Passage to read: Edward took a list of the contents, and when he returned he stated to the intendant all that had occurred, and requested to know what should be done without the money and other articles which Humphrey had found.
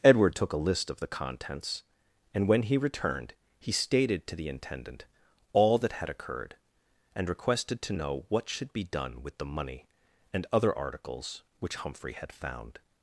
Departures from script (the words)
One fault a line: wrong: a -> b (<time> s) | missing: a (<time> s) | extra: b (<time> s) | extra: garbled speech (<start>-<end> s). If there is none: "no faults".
wrong: without -> with (9.2 s)